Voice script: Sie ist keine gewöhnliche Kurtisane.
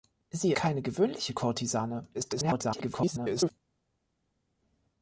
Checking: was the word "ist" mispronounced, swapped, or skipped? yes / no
yes